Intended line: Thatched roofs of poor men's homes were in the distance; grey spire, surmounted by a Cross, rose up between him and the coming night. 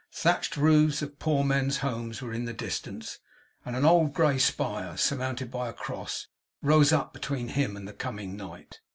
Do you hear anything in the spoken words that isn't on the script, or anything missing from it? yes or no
yes